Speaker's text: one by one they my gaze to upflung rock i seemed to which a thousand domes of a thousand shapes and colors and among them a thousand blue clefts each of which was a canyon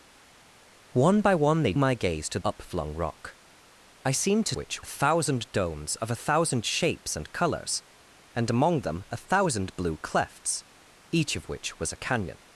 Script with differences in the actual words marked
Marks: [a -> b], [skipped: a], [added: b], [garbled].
one by one they my gaze to upflung rock i seemed to which a thousand domes of a thousand shapes and colors and among them a thousand blue clefts each of which was a canyon